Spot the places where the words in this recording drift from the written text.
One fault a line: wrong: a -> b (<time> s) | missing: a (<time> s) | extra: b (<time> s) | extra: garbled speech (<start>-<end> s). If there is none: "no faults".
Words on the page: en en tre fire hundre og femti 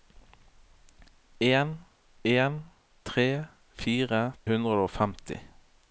no faults